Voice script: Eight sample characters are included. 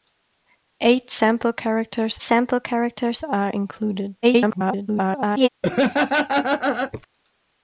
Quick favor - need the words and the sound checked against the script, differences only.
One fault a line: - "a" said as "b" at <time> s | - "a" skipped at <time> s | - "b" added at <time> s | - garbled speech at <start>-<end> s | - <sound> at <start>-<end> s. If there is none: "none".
- "sample characters" added at 2.2 s
- garbled speech at 4.2-5.5 s
- laugh at 5.6-7.1 s